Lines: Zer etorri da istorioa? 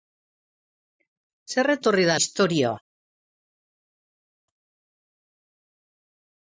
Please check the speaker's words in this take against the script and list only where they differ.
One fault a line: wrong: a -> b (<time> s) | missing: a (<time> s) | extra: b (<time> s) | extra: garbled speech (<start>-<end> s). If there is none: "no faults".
no faults